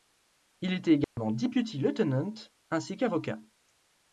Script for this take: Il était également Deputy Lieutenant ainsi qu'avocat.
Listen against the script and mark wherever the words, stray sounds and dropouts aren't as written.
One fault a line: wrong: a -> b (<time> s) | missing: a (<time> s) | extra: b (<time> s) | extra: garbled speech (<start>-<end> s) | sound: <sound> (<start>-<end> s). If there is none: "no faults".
sound: dropout (1.0-1.2 s)